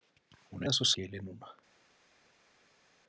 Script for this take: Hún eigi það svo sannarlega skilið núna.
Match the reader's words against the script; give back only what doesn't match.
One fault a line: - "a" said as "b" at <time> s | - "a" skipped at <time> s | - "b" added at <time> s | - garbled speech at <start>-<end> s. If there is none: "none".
- "eigi" skipped at 0.7 s
- "sannarlega" skipped at 0.9 s